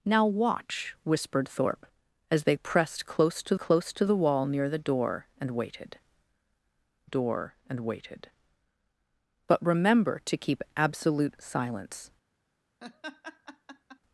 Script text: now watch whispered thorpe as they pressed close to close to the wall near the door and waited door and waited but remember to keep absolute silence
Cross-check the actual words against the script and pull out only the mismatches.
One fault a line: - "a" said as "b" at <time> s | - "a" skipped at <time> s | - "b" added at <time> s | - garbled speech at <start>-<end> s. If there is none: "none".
none